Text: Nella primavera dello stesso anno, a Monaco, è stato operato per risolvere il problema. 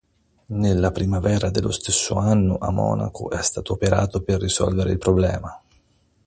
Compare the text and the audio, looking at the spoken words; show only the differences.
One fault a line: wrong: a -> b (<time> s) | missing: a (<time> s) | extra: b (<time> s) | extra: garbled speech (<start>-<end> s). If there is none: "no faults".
no faults